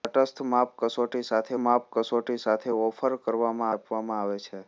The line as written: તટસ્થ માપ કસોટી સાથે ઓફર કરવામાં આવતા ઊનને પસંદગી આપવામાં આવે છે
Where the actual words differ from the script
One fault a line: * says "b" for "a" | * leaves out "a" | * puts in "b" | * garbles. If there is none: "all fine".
* says "માપ કસોટી સાથે ઓફર કરવામાં" for "ઓફર કરવામાં આવતા ઊનને પસંદગી"